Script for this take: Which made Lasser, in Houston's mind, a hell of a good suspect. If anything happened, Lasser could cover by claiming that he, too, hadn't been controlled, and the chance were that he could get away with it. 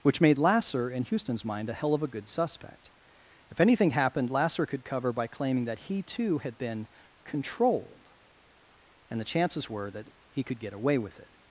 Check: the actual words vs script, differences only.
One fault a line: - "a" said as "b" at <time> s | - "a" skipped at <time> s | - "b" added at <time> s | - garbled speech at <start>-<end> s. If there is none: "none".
- "hadn't" said as "had" at 6.4 s
- "chance" said as "chances" at 9.2 s